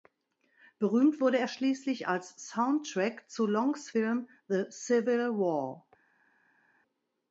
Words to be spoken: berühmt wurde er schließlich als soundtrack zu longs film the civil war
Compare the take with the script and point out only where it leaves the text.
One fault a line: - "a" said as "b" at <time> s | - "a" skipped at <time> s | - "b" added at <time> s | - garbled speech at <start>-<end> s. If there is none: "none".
none